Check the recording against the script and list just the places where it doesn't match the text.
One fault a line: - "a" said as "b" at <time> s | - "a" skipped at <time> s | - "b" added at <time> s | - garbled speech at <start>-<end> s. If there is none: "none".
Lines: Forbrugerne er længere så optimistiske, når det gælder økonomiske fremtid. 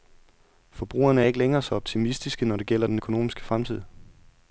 - "ikke" added at 1.3 s
- "den" added at 2.9 s